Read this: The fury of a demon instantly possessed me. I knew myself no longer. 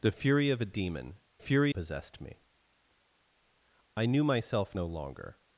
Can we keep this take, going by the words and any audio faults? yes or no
no